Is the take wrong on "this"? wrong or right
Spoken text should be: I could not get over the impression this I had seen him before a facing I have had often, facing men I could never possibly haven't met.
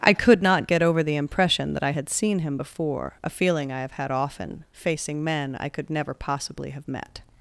wrong